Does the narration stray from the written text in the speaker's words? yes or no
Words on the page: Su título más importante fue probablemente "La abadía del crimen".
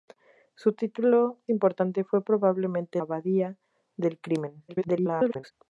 yes